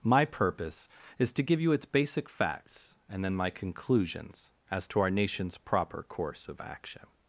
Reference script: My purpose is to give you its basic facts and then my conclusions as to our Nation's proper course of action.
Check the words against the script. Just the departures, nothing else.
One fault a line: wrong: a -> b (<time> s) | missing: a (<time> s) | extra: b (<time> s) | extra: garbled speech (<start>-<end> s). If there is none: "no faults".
no faults